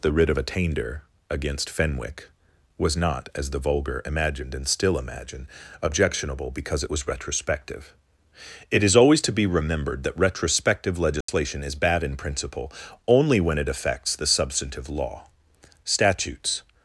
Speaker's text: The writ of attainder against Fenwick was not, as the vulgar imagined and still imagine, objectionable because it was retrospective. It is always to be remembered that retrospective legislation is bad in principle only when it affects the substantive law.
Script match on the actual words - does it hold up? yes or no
no